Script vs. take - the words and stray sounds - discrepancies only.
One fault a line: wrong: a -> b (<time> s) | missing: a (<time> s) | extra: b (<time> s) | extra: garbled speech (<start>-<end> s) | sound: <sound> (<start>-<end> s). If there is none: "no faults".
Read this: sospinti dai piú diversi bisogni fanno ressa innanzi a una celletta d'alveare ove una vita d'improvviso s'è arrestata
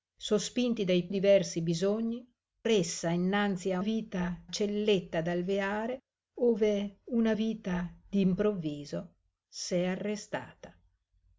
missing: piú (1.1 s)
missing: fanno (2.2 s)
wrong: una -> vita (3.8 s)